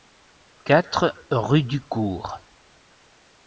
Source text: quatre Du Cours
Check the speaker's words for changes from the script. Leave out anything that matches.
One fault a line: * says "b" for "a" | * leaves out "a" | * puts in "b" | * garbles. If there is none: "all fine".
* puts in "rue"